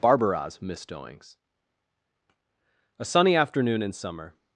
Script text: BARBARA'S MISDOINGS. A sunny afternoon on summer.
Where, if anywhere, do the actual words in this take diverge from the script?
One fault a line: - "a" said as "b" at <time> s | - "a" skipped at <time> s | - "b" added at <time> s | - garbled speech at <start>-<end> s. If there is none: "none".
- "on" said as "in" at 3.8 s